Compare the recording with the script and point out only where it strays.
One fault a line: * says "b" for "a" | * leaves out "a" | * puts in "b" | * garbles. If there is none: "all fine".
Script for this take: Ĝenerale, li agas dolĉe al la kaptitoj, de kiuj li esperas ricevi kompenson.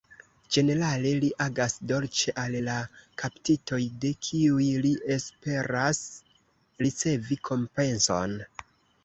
all fine